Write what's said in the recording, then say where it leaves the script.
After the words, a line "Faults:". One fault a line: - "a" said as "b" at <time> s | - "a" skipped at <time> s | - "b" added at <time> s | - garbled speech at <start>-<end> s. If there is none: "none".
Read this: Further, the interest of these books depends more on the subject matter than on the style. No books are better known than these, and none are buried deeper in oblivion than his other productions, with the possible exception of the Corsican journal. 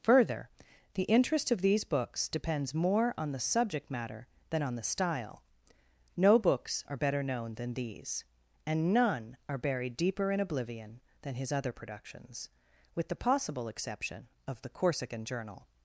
Further, the interest of these books depends more on the subject matter than on the style. No books are better known than these, and none are buried deeper in oblivion than his other productions, with the possible exception of the Corsican journal.
Faults:
none